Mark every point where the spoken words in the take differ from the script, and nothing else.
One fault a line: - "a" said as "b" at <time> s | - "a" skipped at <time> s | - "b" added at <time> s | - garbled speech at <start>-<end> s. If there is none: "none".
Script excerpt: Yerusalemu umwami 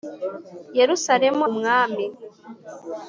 none